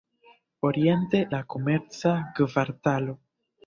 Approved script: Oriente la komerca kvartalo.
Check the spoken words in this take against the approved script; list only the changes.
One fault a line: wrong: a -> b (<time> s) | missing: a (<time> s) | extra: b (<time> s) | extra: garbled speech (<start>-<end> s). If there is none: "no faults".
no faults